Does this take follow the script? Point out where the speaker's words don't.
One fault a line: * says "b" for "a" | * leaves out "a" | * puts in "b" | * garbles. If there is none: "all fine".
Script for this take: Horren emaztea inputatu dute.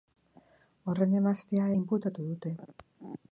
all fine